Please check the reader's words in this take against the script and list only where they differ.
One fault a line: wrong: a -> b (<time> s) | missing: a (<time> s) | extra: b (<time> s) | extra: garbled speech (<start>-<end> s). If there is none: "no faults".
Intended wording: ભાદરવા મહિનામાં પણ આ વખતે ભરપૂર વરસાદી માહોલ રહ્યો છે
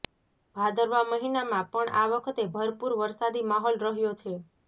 no faults